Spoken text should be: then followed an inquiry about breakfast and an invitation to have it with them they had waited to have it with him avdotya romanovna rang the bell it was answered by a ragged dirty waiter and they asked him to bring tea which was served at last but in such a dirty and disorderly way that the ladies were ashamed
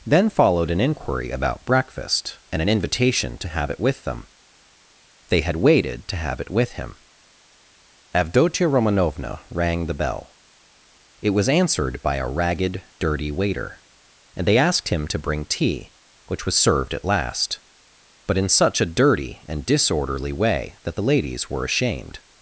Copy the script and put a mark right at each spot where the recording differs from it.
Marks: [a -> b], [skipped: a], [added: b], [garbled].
then followed an inquiry about breakfast and an invitation to have it with them they had waited to have it with him avdotya romanovna rang the bell it was answered by a ragged dirty waiter and they asked him to bring tea which was served at last but in such a dirty and disorderly way that the ladies were ashamed